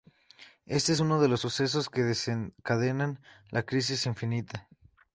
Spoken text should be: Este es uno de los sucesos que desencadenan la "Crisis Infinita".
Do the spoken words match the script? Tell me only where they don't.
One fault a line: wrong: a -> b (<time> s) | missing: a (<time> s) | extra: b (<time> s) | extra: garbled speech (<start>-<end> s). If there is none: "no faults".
no faults